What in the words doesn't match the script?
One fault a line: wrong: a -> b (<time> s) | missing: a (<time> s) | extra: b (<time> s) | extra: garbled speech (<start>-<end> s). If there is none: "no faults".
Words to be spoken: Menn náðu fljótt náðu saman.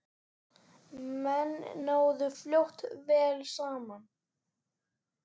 wrong: náðu -> vel (3.1 s)